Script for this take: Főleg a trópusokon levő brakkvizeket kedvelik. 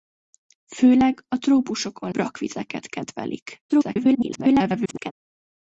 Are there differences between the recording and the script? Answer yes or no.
yes